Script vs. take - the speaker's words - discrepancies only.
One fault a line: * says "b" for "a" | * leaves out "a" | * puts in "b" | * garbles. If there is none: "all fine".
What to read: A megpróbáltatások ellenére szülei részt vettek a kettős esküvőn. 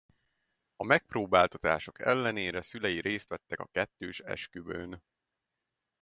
all fine